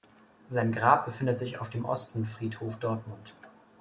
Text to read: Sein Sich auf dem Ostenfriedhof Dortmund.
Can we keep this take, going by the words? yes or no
no